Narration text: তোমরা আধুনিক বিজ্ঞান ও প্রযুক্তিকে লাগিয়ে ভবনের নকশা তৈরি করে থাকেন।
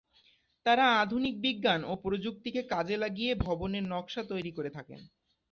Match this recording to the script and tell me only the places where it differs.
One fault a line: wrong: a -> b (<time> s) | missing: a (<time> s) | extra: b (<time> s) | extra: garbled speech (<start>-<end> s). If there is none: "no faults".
wrong: তোমরা -> তারা (0.7 s)
extra: কাজে (2.7 s)